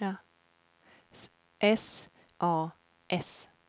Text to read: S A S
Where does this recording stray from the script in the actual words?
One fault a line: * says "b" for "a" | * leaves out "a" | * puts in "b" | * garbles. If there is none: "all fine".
all fine